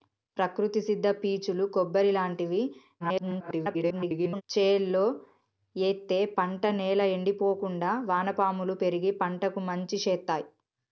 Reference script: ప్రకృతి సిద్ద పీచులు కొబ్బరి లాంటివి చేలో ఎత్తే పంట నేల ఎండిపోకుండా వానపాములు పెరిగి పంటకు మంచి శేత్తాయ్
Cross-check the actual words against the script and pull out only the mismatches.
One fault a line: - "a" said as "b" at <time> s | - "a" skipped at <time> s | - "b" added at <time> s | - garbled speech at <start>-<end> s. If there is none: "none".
- garbled speech at 3.0-4.4 s